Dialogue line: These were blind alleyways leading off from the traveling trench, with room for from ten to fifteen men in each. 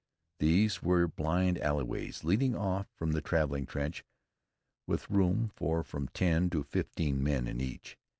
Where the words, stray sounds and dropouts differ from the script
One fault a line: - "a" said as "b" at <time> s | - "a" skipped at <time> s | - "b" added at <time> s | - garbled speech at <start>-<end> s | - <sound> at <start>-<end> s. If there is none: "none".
none